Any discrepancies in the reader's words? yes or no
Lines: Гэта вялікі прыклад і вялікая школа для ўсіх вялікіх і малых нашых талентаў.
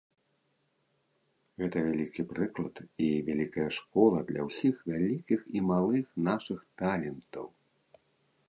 no